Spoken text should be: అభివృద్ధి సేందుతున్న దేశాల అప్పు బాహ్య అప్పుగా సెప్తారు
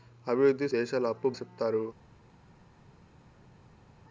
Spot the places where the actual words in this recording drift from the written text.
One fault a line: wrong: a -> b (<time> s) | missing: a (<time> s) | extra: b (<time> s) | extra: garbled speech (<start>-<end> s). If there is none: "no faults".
missing: సేందుతున్న (0.7 s)
missing: బాహ్య అప్పుగా (1.3 s)